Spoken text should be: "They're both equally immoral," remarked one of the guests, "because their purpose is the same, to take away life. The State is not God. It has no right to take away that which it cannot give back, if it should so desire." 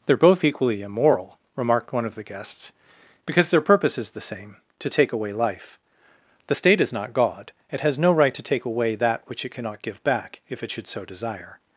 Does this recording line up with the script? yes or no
yes